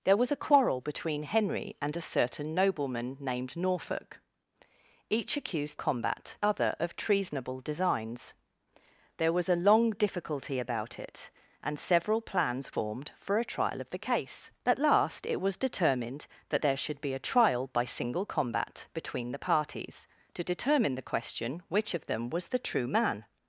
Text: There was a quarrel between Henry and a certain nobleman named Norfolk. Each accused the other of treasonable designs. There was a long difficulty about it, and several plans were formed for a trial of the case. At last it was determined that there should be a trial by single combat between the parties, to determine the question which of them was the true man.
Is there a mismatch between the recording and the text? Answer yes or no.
yes